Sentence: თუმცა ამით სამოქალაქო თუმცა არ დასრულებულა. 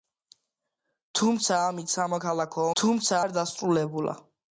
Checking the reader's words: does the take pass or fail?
pass